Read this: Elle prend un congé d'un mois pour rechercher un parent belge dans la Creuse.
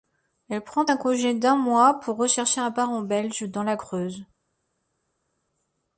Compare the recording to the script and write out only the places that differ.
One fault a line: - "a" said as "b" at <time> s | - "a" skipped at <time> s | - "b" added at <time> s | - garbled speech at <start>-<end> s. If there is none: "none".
none